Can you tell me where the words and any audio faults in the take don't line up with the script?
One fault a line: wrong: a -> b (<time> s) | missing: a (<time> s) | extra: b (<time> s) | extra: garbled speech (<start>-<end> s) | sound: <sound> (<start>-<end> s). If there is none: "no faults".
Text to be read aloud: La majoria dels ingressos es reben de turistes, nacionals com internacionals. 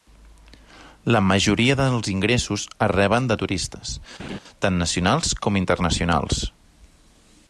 sound: laugh (4.2-4.4 s)
extra: tant (4.7 s)